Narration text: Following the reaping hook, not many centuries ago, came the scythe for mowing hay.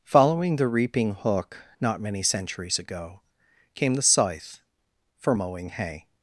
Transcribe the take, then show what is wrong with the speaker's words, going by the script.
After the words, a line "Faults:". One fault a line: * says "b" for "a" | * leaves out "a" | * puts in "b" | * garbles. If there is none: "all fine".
Following the reaping hook, not many centuries ago, came the scythe for mowing hay.
Faults:
all fine